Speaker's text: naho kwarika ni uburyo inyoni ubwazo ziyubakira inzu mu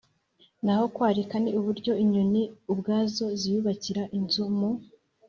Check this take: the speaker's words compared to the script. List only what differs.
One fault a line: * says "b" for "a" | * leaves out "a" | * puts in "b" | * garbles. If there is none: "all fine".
all fine